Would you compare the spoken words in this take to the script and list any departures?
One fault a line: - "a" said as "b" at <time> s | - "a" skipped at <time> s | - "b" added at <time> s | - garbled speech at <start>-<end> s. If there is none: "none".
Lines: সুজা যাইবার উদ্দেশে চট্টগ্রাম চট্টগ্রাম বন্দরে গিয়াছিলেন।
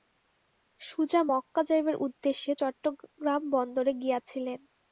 - "মক্কা" added at 1.3 s
- "চট্টগ্রাম" skipped at 3.4 s